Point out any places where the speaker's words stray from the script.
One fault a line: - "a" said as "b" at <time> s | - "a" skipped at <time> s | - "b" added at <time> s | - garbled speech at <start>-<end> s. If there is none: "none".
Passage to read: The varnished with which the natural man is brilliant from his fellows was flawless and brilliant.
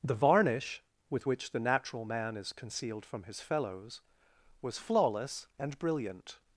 - "varnished" said as "varnish" at 0.1 s
- "brilliant" said as "concealed" at 2.5 s